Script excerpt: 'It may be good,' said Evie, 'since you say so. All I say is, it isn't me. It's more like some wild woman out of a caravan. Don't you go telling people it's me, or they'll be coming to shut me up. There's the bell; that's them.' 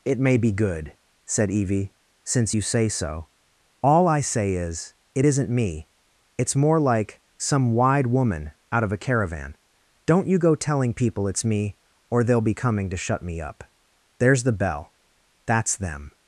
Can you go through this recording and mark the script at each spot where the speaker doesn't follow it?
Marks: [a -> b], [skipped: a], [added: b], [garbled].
'It may be good,' said Evie, 'since you say so. All I say is, it isn't me. It's more like some [wild -> wide] woman out of a caravan. Don't you go telling people it's me, or they'll be coming to shut me up. There's the bell; that's them.'